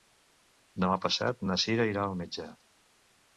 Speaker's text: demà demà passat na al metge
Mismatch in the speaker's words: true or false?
true